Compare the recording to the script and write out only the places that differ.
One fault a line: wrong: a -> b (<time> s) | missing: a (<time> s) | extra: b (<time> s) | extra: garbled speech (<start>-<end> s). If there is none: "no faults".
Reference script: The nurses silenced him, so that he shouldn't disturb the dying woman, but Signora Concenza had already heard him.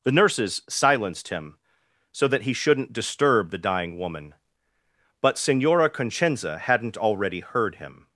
wrong: had -> hadn't (6.6 s)